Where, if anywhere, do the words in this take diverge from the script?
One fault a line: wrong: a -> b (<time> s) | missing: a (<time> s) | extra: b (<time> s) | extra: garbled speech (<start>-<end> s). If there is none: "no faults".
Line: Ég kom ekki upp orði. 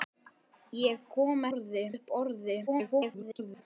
wrong: ekki -> orði (1.5 s)
extra: garbled speech (2.7-3.6 s)